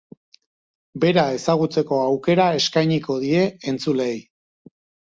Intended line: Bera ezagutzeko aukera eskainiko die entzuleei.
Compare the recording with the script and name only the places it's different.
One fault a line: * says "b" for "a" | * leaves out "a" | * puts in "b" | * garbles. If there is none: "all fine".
all fine